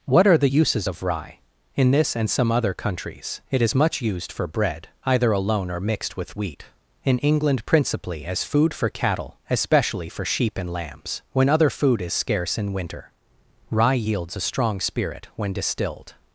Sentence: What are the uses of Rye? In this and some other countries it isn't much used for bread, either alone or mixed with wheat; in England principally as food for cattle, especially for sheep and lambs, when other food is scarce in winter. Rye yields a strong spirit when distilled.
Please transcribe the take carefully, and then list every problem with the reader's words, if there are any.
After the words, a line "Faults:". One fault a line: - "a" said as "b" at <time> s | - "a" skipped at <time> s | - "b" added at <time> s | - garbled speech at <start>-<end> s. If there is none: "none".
What are the uses of Rye? In this and some other countries it is much used for bread, either alone or mixed with wheat; in England principally as food for cattle, especially for sheep and lambs, when other food is scarce in winter. Rye yields a strong spirit when distilled.
Faults:
- "isn't" said as "is" at 3.6 s